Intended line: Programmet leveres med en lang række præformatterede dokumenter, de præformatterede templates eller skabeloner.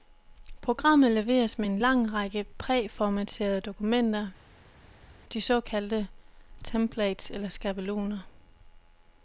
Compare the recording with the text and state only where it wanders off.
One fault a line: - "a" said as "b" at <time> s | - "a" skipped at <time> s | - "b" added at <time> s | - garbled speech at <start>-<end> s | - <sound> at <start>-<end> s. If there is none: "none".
- "præformatterede" said as "såkaldte" at 5.4 s